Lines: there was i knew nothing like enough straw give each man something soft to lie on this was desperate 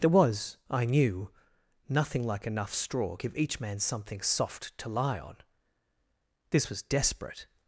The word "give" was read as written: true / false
true